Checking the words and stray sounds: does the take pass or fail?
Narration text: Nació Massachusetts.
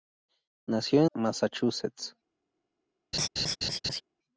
fail